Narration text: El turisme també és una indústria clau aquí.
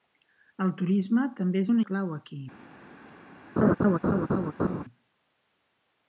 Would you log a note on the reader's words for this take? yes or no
yes